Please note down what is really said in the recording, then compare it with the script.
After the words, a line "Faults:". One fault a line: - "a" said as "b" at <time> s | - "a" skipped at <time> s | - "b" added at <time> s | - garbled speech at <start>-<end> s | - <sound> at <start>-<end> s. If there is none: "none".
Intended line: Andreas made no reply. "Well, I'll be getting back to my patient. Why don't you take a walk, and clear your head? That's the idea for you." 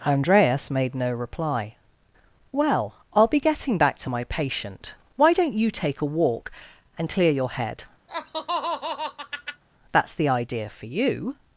Andreas made no reply. "Well, I'll be getting back to my patient. Why don't you take a walk, and clear your head? That's the idea for you."
Faults:
- laugh at 8.1-9.6 s